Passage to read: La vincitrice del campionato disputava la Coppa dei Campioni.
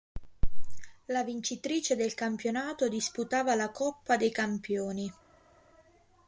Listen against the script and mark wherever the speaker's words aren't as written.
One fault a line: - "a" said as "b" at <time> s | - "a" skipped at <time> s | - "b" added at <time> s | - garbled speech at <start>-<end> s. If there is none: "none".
none